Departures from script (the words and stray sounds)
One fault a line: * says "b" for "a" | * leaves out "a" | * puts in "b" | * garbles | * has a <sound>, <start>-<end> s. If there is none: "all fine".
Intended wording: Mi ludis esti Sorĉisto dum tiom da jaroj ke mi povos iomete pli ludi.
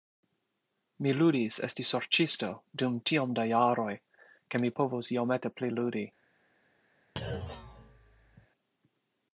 * has a thud, 7.2-8.5 s